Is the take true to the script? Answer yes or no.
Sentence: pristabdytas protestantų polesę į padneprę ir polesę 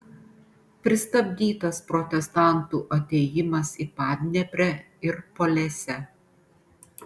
no